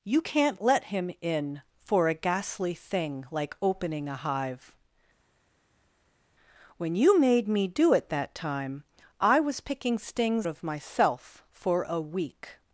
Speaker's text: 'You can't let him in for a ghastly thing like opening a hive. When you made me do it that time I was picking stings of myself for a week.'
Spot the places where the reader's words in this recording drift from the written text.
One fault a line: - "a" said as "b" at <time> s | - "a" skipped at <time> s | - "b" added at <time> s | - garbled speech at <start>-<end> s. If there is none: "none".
none